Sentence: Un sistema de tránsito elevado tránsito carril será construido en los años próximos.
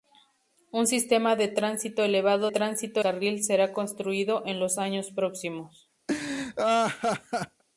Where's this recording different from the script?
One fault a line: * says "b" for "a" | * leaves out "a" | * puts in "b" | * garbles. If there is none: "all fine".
all fine